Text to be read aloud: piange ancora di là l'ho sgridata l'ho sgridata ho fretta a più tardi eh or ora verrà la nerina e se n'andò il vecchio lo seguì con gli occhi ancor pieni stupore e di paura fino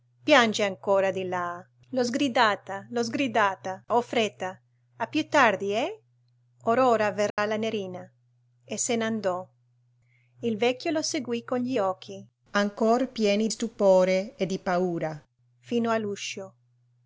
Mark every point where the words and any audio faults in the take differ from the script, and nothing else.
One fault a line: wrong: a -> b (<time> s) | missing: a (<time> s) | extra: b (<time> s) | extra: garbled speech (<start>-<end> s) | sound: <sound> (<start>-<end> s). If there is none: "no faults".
sound: dropout (7.3-7.4 s)